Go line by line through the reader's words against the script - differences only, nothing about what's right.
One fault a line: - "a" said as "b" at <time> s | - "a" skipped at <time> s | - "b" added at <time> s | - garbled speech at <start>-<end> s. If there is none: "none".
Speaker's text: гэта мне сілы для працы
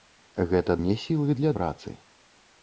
none